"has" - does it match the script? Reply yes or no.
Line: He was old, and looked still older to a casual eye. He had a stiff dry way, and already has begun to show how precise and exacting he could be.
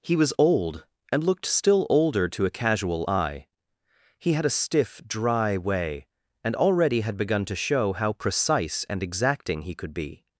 no